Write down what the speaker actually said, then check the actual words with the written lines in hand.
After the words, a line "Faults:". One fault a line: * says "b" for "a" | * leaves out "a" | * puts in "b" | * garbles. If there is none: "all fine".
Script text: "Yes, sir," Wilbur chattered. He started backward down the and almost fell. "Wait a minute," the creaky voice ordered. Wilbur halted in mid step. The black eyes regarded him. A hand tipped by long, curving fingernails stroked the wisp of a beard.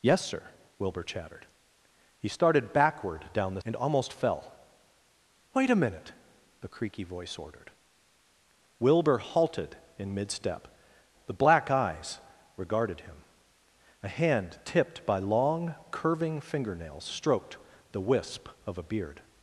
"Yes, sir," Wilbur chattered. He started backward down the and almost fell. "Wait a minute," the creaky voice ordered. Wilbur halted in mid step. The black eyes regarded him. A hand tipped by long, curving fingernails stroked the wisp of a beard.
Faults:
all fine